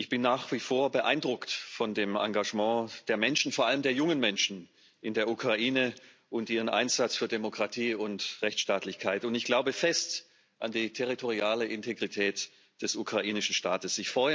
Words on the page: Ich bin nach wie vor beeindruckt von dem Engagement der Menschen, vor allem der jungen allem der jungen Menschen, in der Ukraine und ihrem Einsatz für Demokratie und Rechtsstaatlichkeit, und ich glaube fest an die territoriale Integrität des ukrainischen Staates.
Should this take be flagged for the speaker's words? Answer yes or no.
yes